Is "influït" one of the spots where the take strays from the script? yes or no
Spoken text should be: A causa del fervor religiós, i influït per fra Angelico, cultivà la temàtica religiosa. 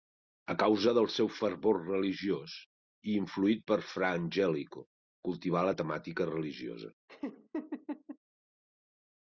no